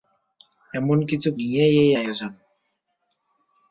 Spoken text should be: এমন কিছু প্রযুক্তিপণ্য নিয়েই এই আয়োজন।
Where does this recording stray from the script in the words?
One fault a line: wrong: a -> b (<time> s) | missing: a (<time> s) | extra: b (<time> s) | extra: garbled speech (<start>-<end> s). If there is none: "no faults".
missing: প্রযুক্তিপণ্য (1.3 s)